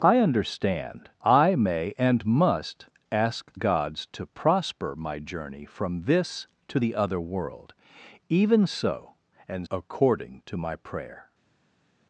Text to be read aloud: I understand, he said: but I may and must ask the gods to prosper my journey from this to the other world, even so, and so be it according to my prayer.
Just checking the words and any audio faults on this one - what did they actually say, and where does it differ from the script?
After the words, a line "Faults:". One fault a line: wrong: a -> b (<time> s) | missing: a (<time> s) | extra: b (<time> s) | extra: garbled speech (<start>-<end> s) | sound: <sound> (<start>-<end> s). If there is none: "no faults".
I understand, I may and must ask gods to prosper my journey from this to the other world, even so, and according to my prayer.
Faults:
missing: he said but (1.1 s)
missing: the (3.6 s)
missing: so be it (9.7 s)